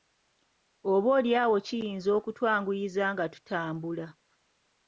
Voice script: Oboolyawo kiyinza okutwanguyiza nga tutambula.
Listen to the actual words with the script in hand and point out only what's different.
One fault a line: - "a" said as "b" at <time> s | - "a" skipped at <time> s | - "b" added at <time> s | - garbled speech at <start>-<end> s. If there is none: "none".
none